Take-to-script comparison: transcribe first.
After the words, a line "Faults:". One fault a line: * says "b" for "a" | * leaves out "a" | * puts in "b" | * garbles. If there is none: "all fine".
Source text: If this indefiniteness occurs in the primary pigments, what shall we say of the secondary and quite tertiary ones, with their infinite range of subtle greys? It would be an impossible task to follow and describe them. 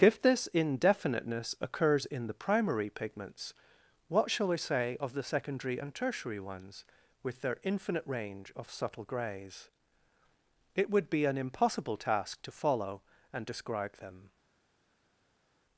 If this indefiniteness occurs in the primary pigments, what shall we say of the secondary and tertiary ones, with their infinite range of subtle greys? It would be an impossible task to follow and describe them.
Faults:
* leaves out "quite"